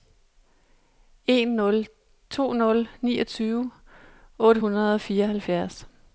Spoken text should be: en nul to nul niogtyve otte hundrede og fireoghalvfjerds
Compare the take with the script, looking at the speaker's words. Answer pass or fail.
pass